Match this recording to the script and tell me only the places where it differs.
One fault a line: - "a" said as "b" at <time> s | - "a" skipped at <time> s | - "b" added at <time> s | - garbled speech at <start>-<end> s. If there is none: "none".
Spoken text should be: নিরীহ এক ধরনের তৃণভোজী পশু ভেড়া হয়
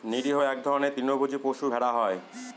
none